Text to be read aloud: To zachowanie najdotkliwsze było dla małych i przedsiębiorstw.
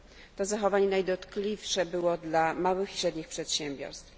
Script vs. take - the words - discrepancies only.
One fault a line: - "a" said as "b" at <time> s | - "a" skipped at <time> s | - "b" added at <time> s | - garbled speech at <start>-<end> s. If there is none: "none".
- "średnich" added at 2.9 s